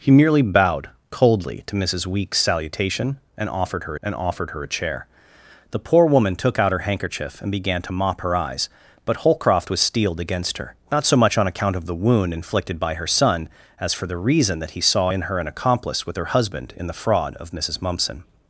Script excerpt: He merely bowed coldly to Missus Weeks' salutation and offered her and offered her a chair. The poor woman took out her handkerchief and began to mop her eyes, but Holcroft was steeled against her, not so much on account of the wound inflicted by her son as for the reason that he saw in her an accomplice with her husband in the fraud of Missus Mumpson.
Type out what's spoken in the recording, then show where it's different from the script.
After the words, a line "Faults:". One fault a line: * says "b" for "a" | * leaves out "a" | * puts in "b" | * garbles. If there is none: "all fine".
He merely bowed coldly to Missus Weeks' salutation and offered her and offered her a chair. The poor woman took out her handkerchief and began to mop her eyes, but Holcroft was steeled against her, not so much on account of the wound inflicted by her son as for the reason that he saw in her an accomplice with her husband in the fraud of Missus Mumpson.
Faults:
all fine